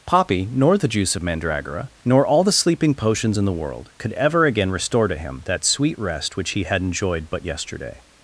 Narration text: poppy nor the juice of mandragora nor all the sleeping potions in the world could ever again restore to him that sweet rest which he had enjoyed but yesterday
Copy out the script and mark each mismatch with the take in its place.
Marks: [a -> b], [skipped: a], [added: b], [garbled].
poppy nor the juice of mandragora nor all the sleeping potions in the world could ever again restore to him that sweet rest which he had enjoyed but yesterday